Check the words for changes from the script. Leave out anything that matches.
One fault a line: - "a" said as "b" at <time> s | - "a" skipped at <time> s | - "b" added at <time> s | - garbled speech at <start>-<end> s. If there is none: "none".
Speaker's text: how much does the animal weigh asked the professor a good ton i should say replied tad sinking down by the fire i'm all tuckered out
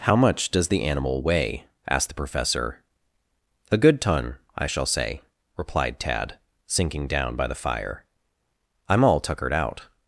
- "should" said as "shall" at 4.7 s